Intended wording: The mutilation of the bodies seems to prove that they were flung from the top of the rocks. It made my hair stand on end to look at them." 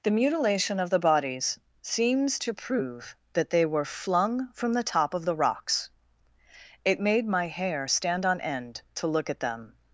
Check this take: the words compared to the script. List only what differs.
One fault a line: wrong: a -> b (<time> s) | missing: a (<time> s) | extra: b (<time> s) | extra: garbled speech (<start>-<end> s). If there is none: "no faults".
no faults